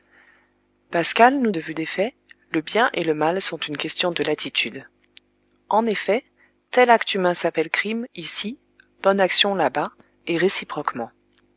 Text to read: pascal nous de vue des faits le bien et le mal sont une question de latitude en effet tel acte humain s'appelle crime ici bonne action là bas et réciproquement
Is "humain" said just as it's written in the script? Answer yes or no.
yes